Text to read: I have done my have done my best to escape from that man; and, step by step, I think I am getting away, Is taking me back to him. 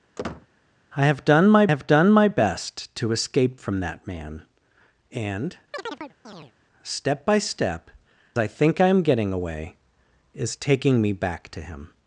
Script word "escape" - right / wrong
right